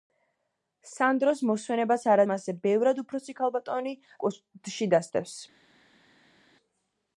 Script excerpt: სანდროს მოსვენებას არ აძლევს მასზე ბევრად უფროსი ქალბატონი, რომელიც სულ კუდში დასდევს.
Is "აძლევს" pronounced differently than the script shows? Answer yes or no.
yes